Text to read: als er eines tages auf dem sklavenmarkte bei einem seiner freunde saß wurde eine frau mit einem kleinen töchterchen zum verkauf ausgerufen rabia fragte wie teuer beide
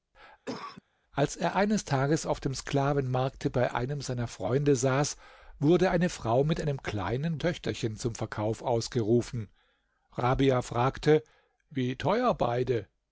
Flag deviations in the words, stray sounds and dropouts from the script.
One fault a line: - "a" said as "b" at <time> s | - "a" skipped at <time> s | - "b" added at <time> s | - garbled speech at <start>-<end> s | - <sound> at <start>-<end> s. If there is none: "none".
- cough at 0.4-0.8 s